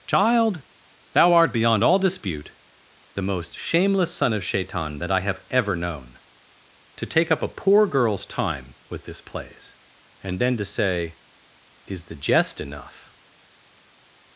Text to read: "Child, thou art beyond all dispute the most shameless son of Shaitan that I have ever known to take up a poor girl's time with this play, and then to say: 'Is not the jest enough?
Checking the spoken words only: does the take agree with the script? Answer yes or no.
no